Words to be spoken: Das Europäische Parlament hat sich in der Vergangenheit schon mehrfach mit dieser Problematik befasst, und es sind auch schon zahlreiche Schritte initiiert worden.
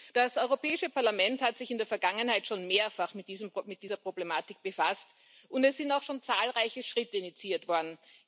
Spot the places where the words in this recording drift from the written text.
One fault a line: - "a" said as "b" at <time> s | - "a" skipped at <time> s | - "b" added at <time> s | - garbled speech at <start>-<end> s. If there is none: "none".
none